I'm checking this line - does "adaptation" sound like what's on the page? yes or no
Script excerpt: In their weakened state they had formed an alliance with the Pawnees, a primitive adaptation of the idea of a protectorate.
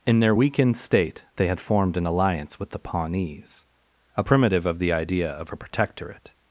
no